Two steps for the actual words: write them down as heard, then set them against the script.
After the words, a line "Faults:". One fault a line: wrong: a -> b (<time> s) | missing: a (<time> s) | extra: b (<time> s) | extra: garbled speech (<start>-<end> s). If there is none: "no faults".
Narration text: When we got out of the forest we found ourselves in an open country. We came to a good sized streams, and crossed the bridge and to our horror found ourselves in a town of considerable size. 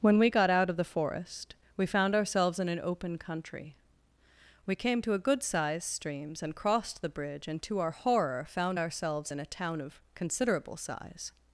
When we got out of the forest we found ourselves in an open country. We came to a good sized streams, and crossed the bridge and to our horror found ourselves in a town of considerable size.
Faults:
no faults